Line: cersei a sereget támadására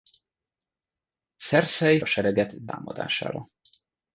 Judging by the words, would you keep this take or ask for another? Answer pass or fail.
pass